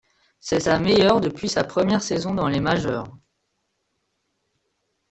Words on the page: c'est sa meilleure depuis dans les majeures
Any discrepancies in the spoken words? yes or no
yes